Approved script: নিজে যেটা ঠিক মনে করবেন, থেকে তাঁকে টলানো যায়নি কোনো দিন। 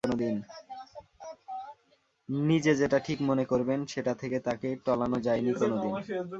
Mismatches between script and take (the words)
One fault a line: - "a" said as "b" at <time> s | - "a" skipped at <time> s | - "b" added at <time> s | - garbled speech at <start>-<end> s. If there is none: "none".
- "সেটা" added at 3.9 s